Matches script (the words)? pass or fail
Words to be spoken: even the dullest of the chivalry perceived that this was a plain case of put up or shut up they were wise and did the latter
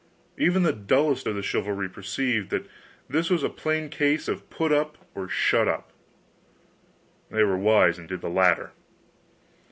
pass